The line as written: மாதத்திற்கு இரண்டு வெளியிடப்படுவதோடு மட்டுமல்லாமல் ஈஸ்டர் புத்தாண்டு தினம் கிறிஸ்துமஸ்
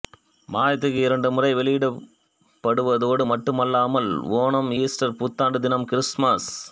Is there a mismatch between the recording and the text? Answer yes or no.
yes